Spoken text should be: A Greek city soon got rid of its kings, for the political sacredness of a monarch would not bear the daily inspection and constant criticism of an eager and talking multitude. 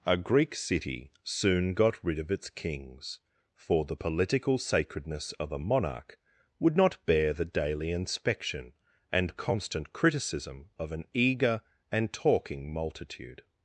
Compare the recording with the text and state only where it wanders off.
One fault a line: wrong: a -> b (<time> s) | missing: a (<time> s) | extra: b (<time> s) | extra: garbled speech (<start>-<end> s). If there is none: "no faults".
no faults